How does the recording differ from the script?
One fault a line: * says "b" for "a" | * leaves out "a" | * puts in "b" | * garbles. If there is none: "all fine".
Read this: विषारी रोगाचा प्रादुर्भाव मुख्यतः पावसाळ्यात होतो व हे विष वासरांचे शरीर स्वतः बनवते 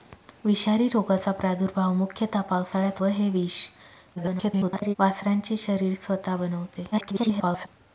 * leaves out "होतो"
* garbles
* garbles